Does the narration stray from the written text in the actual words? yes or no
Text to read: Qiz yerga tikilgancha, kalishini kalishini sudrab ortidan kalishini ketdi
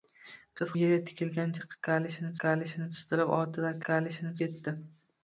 no